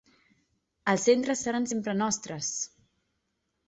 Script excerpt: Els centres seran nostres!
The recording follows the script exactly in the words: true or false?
false